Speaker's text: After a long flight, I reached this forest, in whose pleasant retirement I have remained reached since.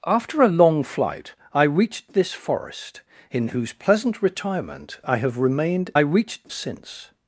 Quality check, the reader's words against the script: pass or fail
pass